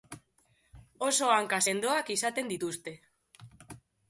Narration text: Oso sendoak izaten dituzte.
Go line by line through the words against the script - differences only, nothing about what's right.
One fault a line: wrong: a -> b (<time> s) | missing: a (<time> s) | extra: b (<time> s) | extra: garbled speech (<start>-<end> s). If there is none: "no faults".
extra: hanka (1.3 s)